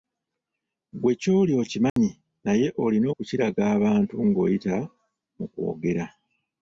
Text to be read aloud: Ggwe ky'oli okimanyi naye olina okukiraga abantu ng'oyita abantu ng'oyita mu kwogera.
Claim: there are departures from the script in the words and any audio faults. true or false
true